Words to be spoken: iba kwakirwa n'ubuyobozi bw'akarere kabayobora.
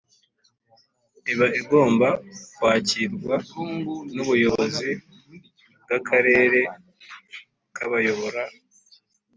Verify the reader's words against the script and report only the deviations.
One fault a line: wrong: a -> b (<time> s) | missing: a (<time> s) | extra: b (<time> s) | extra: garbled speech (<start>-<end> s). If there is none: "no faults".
extra: igomba (1.6 s)